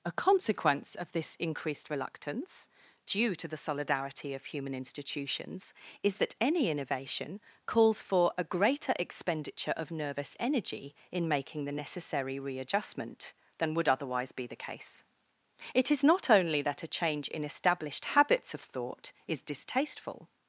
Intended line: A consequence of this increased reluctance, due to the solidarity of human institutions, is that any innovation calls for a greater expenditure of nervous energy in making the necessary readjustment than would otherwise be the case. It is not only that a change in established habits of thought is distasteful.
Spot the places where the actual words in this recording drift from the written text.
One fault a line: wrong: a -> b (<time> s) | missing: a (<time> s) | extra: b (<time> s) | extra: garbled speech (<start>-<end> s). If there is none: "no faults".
no faults